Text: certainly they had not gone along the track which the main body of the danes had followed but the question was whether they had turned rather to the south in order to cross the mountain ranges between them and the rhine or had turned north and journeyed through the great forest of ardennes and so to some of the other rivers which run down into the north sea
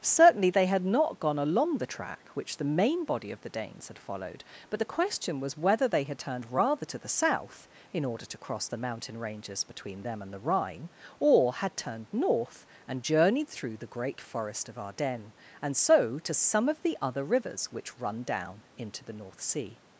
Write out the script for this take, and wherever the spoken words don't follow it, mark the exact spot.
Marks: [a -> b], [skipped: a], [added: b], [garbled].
certainly they had not gone along the track which the main body of the danes had followed but the question was whether they had turned rather to the south in order to cross the mountain ranges between them and the rhine or had turned north and journeyed through the great forest of ardennes and so to some of the other rivers which run down into the north sea